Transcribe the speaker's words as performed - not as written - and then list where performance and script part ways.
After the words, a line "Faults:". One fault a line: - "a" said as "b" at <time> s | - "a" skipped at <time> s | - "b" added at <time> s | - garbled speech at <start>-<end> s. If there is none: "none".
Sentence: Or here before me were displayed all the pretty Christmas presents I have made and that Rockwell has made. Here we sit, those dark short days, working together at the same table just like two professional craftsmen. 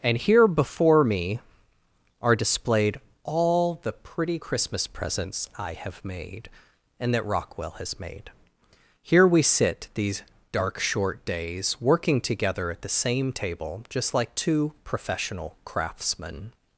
And here before me are displayed all the pretty Christmas presents I have made and that Rockwell has made. Here we sit, these dark short days, working together at the same table just like two professional craftsmen.
Faults:
- "Or" said as "And" at 0.0 s
- "were" said as "are" at 2.2 s
- "those" said as "these" at 9.9 s